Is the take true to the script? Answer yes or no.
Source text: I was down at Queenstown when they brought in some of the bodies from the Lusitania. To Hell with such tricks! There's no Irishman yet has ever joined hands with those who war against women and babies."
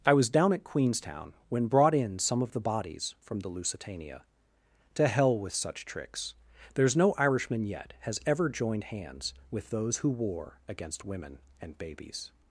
no